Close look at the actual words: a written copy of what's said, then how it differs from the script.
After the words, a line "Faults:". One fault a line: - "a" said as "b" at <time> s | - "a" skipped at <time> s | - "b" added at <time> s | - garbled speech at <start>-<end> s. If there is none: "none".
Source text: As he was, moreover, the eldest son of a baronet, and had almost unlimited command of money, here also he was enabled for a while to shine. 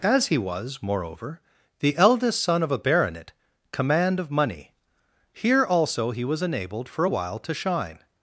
As he was, moreover, the eldest son of a baronet, command of money, here also he was enabled for a while to shine.
Faults:
- "and had almost unlimited" skipped at 3.3 s